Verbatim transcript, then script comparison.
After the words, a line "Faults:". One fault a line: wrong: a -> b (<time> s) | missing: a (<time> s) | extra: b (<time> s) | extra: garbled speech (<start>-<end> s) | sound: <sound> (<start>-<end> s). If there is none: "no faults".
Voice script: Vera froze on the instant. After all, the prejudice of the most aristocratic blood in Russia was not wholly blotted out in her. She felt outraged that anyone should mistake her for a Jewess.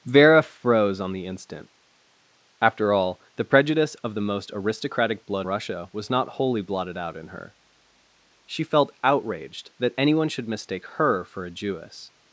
Vera froze on the instant. After all, the prejudice of the most aristocratic blood Russia was not wholly blotted out in her. She felt outraged that anyone should mistake her for a Jewess.
Faults:
missing: in (5.5 s)